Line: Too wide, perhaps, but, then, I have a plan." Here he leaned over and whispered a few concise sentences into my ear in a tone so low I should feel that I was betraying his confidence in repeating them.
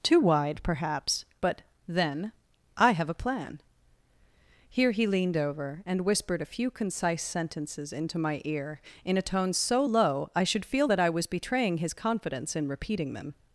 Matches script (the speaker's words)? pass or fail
pass